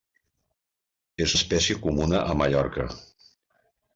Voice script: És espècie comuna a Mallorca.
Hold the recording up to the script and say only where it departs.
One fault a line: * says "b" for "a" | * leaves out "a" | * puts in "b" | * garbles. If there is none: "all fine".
all fine